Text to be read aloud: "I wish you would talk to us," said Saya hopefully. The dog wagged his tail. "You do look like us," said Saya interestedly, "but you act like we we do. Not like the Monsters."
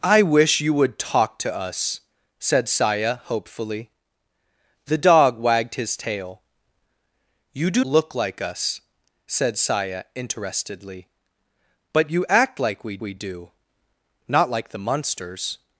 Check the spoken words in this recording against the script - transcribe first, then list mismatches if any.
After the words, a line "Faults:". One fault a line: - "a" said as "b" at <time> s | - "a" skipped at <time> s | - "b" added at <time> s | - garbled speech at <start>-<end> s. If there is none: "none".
"I wish you would talk to us," said Saya hopefully. The dog wagged his tail. "You do look like us," said Saya interestedly, "but you act like we we do. Not like the Monsters."
Faults:
none